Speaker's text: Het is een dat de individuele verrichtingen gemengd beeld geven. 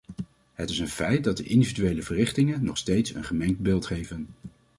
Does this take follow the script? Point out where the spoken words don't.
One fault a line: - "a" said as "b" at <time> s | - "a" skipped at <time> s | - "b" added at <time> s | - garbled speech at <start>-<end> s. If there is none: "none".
- "feit" added at 0.9 s
- "nog steeds een" added at 2.6 s